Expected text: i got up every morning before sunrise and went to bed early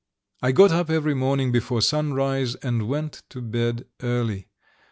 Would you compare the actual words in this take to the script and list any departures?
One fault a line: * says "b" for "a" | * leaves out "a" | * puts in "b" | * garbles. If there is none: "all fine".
all fine